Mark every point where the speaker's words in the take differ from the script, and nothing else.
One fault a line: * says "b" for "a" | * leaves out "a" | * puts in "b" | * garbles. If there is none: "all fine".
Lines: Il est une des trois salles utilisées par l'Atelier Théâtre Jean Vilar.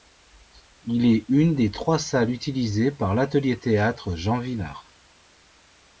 all fine